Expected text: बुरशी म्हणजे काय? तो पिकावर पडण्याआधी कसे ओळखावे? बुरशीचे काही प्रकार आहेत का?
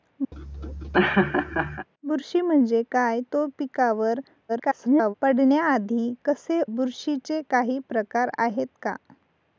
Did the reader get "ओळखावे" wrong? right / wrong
wrong